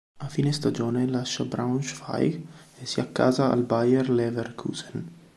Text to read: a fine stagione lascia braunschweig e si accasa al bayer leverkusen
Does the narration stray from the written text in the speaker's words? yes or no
no